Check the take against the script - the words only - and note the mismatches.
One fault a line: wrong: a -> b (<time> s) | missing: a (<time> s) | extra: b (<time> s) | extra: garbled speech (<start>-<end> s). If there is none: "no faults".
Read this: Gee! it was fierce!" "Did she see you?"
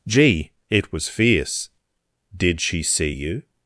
no faults